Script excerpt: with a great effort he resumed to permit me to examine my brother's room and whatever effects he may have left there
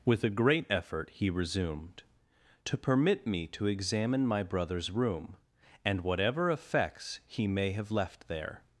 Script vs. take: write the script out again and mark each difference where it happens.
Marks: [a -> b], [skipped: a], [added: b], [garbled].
with a great effort he resumed to permit me to examine my brother's room and whatever effects he may have left there